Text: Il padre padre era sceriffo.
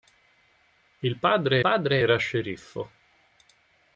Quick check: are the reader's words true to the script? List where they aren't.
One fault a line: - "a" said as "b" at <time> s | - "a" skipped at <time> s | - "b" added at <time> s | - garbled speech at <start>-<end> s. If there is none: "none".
none